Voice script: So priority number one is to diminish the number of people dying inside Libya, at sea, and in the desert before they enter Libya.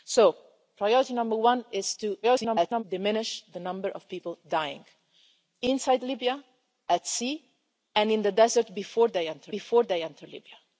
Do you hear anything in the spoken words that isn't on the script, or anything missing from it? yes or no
yes